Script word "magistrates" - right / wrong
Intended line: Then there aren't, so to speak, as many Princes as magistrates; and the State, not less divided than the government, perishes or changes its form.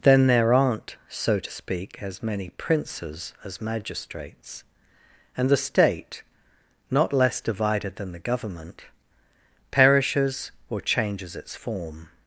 right